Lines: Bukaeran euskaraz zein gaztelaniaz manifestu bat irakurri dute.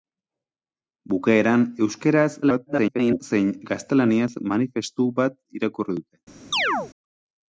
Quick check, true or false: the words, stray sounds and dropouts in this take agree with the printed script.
false